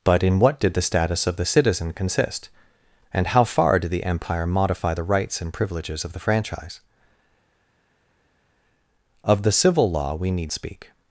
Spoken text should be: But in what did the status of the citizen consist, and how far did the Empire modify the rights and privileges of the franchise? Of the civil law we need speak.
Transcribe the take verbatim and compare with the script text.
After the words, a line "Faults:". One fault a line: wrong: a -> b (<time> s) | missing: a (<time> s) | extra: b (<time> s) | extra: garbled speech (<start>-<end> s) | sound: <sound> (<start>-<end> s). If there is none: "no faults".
But in what did the status of the citizen consist, and how far did the Empire modify the rights and privileges of the franchise? Of the civil law we need speak.
Faults:
no faults